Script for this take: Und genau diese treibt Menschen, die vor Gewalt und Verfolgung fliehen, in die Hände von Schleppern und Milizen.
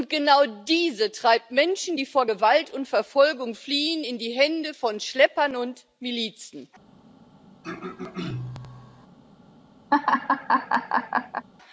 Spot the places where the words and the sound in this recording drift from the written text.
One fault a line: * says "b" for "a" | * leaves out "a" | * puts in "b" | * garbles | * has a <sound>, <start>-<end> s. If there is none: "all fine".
* has a throat clearing, 7.6-9.1 s
* has a laugh, 9.9-11.5 s